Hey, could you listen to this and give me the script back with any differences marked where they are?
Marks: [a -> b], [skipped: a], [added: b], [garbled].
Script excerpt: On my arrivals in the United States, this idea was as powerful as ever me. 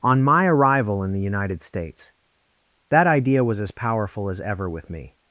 On my [arrivals -> arrival] in the United States, [this -> that] idea was as powerful as ever [added: with] me.